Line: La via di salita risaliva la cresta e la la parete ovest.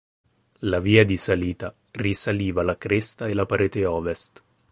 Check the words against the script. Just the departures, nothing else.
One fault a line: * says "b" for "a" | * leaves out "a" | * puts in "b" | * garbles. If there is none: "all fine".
* leaves out "la"